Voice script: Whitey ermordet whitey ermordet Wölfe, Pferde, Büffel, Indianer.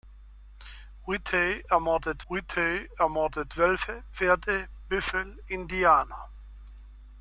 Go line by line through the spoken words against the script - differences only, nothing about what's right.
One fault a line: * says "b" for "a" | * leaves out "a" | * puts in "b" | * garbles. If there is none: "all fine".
all fine